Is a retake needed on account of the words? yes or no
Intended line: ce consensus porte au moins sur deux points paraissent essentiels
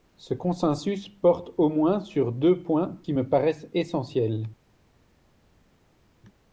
yes